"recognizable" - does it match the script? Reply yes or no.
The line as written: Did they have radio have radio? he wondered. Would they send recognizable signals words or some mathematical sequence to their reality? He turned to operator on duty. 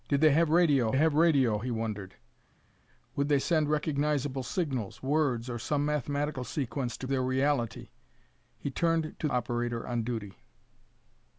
yes